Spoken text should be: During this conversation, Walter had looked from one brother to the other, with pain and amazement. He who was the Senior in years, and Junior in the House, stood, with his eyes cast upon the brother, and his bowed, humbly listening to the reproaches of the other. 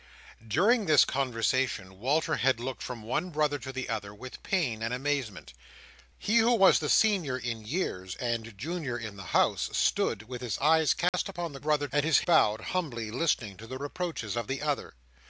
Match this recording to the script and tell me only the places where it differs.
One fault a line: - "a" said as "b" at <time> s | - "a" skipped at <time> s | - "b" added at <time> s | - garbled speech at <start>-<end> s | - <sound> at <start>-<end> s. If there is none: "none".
- dropout at 11.1-11.1 s